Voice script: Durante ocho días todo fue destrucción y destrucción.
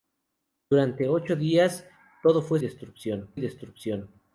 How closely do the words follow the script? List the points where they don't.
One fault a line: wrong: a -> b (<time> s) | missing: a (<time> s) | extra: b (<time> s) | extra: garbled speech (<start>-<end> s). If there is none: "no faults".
no faults